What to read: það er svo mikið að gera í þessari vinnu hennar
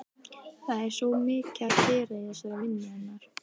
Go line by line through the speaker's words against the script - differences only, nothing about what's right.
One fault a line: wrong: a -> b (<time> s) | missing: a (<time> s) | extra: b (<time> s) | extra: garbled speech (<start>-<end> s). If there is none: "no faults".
no faults